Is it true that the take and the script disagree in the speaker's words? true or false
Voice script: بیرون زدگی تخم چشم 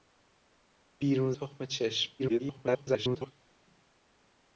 true